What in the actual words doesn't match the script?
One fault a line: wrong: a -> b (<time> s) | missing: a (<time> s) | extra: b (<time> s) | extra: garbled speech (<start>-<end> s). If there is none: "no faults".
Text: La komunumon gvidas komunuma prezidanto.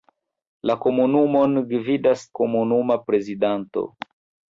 no faults